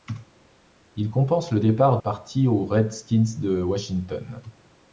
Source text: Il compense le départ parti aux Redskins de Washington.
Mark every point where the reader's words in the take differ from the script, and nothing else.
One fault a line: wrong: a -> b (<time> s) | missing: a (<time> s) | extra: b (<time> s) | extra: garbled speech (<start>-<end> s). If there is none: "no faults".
no faults